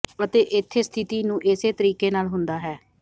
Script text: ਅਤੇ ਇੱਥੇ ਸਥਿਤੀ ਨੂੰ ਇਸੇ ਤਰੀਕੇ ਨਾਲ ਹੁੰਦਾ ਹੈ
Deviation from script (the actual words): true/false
false